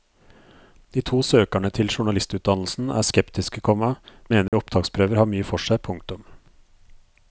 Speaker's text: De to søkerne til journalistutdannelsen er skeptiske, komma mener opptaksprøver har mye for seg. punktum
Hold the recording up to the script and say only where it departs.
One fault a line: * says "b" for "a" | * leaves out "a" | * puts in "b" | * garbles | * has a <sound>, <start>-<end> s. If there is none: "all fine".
* has a dropout, 4.5-4.5 s